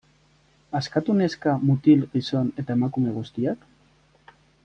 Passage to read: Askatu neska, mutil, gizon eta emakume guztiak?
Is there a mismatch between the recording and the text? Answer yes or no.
no